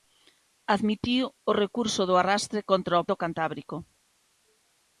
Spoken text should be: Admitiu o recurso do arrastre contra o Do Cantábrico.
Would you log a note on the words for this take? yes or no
no